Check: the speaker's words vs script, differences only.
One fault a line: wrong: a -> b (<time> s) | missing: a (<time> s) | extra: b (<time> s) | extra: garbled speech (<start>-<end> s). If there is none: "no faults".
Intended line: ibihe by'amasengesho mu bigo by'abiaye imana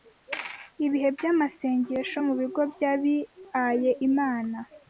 no faults